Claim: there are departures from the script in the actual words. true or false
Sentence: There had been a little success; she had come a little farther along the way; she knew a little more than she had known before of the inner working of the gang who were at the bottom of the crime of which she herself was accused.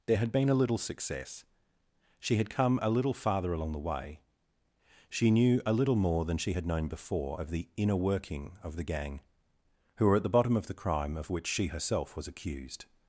false